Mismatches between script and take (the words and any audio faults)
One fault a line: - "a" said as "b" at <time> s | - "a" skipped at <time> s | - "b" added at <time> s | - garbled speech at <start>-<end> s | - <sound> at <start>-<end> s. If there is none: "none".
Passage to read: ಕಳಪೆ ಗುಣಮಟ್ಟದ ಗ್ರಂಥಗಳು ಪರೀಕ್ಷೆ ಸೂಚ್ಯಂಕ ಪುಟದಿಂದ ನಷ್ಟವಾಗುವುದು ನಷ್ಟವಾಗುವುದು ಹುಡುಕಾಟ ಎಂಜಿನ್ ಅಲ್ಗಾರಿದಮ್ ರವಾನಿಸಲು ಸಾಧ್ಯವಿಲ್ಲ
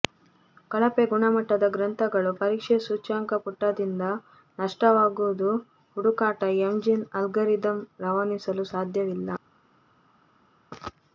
- "ನಷ್ಟವಾಗುವುದು" skipped at 5.5 s